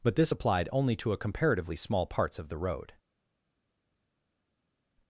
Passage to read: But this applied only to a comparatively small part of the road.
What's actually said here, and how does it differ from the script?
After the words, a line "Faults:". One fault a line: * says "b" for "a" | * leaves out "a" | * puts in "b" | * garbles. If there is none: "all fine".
But this applied only to a comparatively small parts of the road.
Faults:
* says "parts" for "part"